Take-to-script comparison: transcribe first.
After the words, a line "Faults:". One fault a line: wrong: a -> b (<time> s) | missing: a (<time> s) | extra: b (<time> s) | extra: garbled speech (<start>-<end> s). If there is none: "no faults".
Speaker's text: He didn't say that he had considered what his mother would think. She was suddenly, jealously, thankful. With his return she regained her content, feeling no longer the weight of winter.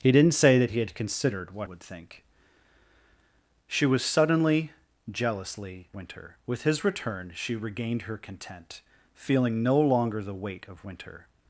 He didn't say that he had considered what would think. She was suddenly, jealously, winter. With his return she regained her content, feeling no longer the weight of winter.
Faults:
missing: his mother (1.7 s)
wrong: thankful -> winter (5.9 s)